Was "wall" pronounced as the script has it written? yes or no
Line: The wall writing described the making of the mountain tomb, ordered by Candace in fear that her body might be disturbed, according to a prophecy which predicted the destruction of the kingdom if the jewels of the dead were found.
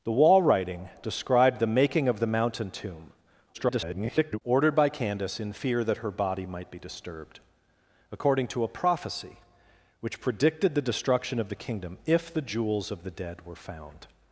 yes